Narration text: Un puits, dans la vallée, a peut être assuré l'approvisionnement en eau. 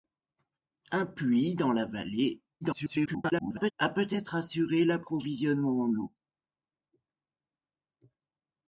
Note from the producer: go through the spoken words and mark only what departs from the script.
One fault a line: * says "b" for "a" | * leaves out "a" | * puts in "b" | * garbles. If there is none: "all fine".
* garbles